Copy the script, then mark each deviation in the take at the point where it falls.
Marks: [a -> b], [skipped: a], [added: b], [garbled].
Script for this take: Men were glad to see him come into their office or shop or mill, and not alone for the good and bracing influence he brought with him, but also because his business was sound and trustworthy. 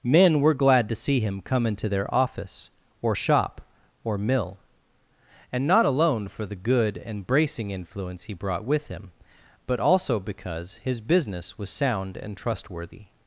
Men were glad to see him come into their office or shop or mill, and not alone for the good and bracing influence he brought with him, but also because his business was sound and trustworthy.